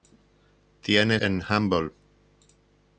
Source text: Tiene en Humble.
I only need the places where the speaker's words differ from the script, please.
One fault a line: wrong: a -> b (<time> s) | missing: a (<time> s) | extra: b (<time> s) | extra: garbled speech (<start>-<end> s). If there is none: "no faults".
no faults